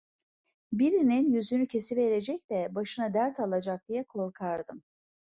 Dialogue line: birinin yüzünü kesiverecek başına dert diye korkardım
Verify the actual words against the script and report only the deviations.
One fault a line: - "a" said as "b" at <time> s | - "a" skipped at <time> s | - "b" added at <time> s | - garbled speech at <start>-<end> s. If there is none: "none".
- "de" added at 2.5 s
- "alacak" added at 3.4 s